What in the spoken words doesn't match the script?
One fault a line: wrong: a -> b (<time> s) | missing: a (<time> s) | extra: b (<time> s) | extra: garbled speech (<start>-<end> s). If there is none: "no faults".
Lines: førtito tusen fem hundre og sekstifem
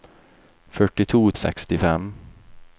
missing: tusen fem hundre (1.2 s)